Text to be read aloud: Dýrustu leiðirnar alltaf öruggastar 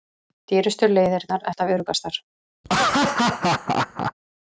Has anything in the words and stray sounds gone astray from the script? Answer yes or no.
yes